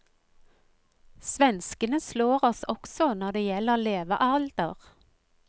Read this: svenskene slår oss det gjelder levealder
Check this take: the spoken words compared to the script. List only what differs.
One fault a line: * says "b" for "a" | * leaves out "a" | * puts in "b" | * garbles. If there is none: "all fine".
* puts in "også når"